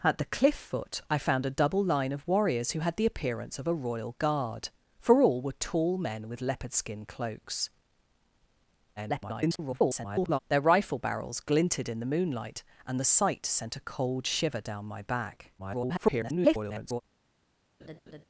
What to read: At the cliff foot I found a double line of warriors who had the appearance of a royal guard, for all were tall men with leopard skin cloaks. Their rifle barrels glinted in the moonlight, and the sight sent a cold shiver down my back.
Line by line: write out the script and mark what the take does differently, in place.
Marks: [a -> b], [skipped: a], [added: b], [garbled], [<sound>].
At the cliff foot I found a double line of warriors who had the appearance of a royal guard, for all were tall men with leopard skin cloaks. [garbled] Their rifle barrels glinted in the moonlight, and the sight sent a cold shiver down my back. [garbled] [laugh]